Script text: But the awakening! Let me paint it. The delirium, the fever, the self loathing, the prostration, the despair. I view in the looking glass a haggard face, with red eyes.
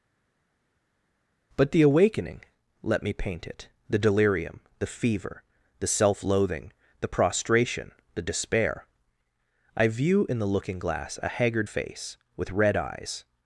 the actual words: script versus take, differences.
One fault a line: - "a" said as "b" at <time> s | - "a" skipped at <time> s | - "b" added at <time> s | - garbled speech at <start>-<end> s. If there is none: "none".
none